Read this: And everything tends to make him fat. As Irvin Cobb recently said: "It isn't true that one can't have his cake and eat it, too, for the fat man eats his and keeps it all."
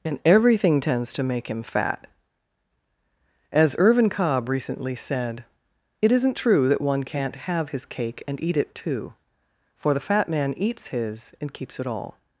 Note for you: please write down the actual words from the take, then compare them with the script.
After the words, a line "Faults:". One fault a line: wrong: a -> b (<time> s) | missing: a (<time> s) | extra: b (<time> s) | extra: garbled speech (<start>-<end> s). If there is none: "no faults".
And everything tends to make him fat. As Irvin Cobb recently said: "It isn't true that one can't have his cake and eat it, too, for the fat man eats his and keeps it all."
Faults:
no faults